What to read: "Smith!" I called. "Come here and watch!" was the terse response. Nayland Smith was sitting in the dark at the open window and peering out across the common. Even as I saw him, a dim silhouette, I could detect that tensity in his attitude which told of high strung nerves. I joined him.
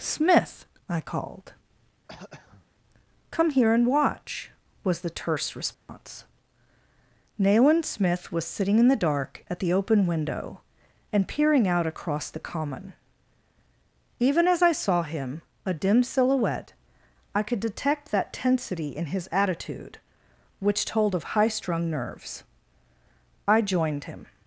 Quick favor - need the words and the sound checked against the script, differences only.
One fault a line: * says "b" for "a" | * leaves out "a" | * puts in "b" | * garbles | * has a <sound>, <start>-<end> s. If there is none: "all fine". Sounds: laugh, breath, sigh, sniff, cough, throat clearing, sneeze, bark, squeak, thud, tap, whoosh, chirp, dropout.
* has a throat clearing, 2.1-2.7 s
* has a dropout, 5.7-5.9 s